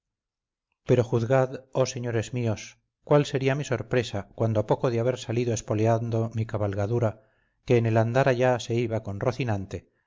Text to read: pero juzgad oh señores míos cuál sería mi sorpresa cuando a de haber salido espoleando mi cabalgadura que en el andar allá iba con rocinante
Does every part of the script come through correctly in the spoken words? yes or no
no